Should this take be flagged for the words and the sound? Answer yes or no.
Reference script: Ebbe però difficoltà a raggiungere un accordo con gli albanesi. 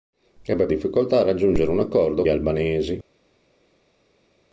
yes